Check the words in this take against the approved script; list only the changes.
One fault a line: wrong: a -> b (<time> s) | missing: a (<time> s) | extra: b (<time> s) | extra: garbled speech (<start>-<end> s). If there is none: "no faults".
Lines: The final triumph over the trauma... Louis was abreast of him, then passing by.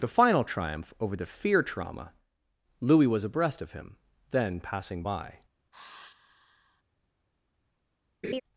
extra: fear (1.3 s)